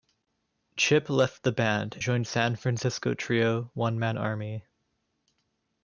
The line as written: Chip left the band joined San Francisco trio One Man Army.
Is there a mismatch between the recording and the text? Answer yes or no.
no